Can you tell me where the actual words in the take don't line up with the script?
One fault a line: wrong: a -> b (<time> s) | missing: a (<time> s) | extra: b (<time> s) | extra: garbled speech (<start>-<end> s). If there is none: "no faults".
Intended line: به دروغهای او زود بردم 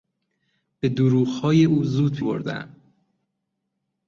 no faults